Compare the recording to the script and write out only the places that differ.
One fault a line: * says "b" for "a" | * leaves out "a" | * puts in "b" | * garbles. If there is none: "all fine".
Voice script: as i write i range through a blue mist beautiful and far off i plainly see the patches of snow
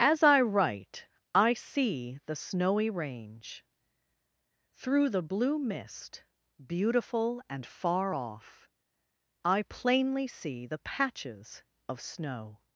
* puts in "see the snowy"
* says "the" for "a"